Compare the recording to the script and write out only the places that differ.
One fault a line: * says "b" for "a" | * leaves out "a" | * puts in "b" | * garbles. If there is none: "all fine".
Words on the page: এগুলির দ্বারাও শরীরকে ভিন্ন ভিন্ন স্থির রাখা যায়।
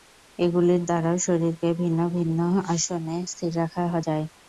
* puts in "আসনে"